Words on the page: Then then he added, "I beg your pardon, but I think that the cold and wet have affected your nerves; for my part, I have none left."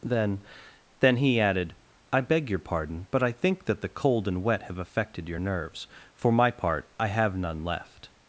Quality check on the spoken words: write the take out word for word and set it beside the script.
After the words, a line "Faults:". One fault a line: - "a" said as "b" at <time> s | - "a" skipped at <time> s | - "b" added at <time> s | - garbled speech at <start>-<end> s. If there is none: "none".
Then then he added, "I beg your pardon, but I think that the cold and wet have affected your nerves; for my part, I have none left."
Faults:
none